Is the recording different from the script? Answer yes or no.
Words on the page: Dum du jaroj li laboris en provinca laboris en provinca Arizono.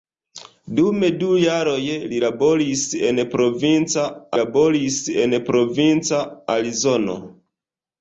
no